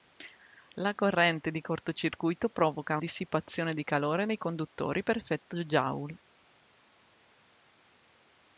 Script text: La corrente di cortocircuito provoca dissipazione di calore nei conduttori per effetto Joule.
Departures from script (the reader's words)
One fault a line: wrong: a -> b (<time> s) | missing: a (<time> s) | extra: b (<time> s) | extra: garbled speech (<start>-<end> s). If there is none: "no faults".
no faults